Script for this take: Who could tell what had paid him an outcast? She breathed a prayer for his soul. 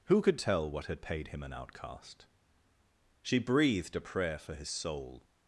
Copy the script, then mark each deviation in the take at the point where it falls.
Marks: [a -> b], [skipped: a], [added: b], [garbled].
Who could tell what had paid him an outcast? She breathed a prayer for his soul.